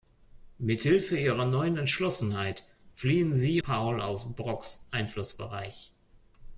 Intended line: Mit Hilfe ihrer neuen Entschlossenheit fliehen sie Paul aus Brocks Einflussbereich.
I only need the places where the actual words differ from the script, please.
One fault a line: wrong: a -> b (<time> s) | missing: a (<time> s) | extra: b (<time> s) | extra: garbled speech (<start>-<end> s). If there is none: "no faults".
no faults